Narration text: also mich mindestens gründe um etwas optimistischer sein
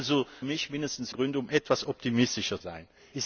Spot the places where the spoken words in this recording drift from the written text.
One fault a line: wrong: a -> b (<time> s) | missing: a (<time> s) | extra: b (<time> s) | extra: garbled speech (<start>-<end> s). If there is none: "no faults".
no faults